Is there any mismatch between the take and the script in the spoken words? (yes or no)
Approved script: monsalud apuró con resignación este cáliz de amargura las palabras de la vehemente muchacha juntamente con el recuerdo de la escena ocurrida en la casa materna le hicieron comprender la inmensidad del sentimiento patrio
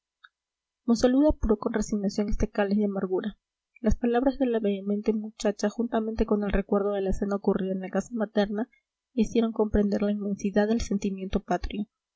no